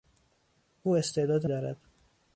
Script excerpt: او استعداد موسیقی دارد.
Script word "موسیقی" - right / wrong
wrong